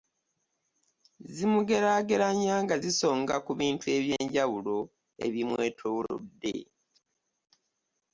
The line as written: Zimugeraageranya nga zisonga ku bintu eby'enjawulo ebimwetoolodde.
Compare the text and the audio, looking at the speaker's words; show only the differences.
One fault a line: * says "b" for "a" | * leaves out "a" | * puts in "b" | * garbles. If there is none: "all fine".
all fine